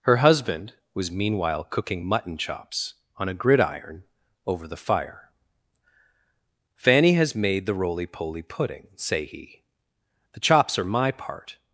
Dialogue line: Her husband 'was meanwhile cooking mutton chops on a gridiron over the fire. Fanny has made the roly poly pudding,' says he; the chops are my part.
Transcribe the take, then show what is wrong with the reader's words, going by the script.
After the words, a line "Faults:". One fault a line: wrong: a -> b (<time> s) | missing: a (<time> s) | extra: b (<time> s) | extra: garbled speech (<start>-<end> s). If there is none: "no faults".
Her husband 'was meanwhile cooking mutton chops on a gridiron over the fire. Fanny has made the roly poly pudding,' say he; the chops are my part.
Faults:
wrong: says -> say (9.0 s)